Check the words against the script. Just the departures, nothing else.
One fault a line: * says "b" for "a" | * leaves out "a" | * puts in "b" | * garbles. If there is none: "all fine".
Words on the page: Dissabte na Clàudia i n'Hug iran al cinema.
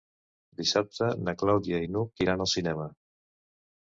all fine